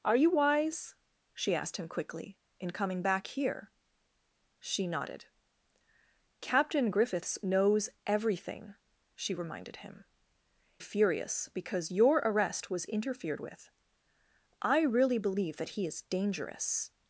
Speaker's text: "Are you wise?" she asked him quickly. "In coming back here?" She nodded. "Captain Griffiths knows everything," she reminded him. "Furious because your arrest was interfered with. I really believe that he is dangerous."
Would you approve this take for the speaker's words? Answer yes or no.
yes